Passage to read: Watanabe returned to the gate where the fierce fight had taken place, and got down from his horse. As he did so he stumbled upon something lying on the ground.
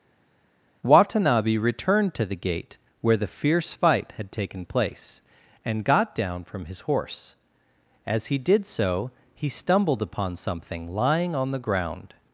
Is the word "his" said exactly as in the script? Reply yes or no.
yes